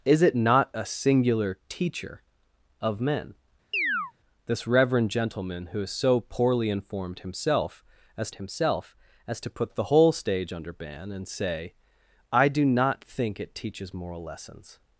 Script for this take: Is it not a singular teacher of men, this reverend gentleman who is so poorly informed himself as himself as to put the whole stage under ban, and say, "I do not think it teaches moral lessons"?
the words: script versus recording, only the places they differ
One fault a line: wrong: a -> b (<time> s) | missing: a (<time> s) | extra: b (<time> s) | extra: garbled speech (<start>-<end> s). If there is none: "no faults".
no faults